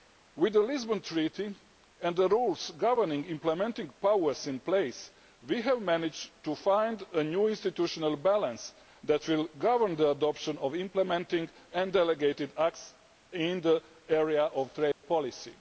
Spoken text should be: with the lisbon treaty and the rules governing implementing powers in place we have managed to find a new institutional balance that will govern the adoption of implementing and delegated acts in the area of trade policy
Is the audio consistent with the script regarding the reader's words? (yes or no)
yes